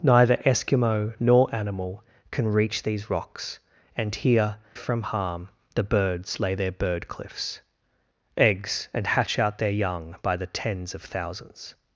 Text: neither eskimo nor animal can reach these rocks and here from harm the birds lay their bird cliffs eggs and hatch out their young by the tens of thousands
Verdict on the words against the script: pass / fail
pass